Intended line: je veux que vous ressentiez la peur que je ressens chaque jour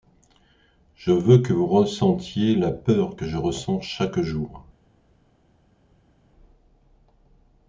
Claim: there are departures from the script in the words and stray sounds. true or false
false